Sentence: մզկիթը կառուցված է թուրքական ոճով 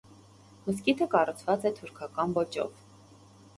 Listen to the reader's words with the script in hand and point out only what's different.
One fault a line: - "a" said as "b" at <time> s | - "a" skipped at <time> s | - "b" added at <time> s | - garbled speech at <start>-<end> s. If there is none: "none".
none